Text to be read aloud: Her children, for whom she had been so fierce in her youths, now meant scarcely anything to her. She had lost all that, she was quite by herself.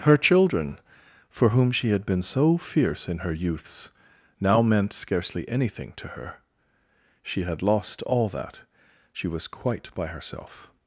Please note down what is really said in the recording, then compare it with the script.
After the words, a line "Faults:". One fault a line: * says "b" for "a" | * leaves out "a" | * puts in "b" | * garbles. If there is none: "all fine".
Her children, for whom she had been so fierce in her youths, now meant scarcely anything to her. She had lost all that, she was quite by herself.
Faults:
all fine